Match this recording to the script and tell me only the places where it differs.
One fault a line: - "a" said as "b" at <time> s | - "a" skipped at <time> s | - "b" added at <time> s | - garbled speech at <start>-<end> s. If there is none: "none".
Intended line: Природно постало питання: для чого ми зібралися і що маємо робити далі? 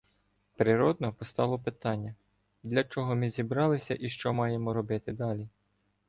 none